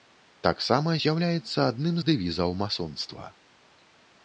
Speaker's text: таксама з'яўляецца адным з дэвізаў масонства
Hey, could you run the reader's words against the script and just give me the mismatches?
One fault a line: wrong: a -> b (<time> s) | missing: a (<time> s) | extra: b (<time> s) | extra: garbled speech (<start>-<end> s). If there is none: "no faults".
no faults